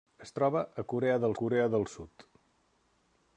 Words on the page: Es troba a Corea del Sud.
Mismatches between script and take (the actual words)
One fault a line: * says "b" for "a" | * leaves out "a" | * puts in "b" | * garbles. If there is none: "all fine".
* puts in "Corea del"